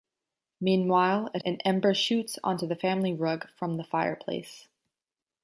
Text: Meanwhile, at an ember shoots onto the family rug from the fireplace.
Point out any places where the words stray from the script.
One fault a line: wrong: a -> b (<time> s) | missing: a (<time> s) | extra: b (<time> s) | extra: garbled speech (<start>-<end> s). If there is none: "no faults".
no faults